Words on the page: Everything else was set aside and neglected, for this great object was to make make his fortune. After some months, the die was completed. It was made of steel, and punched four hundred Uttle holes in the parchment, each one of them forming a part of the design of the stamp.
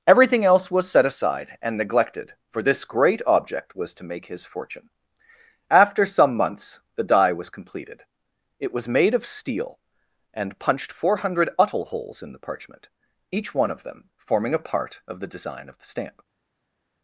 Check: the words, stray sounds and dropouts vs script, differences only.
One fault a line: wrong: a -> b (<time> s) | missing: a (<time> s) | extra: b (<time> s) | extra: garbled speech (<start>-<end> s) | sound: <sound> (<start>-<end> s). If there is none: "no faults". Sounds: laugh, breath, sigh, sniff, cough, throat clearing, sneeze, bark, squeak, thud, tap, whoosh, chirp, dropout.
missing: make (4.2 s)